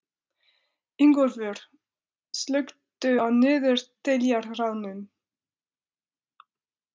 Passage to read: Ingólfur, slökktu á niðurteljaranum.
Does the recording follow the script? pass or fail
pass